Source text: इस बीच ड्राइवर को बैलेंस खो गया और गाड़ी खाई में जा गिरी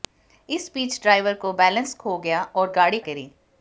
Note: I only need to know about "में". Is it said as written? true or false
false